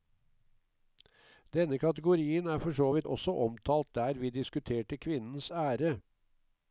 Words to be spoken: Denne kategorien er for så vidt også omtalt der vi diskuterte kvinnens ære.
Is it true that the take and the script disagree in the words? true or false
false